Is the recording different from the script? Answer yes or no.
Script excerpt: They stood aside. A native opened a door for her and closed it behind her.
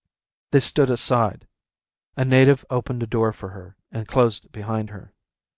no